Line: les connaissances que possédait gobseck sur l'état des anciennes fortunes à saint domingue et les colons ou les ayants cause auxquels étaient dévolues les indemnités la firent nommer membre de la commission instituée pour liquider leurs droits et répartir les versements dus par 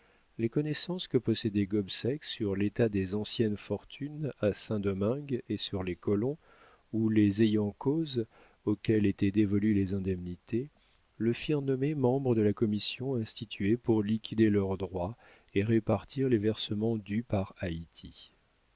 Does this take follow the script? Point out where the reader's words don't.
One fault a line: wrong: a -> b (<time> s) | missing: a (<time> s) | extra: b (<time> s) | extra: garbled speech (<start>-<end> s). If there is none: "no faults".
extra: sur (5.6 s)
wrong: la -> le (11.2 s)